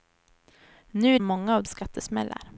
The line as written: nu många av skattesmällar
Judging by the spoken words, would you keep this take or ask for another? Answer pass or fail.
pass